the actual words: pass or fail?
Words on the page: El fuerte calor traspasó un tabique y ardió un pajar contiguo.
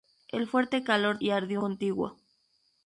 fail